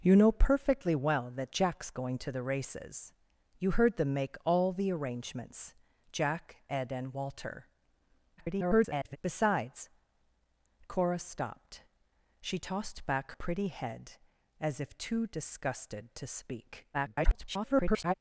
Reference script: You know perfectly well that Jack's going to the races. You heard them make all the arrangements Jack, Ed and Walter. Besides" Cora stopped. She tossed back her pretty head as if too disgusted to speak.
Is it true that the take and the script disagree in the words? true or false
true